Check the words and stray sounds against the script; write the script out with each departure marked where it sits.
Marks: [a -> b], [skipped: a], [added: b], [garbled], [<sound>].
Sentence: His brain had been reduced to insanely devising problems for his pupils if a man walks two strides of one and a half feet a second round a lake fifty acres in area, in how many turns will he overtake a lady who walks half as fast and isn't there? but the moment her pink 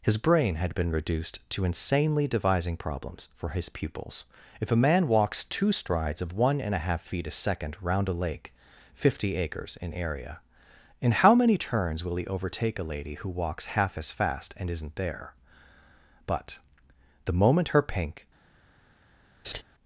His brain had been reduced to insanely devising problems for his pupils if a man walks two strides of one and a half feet a second round a lake fifty acres in area, in how many turns will he overtake a lady who walks half as fast and isn't there? but the moment her pink [laugh]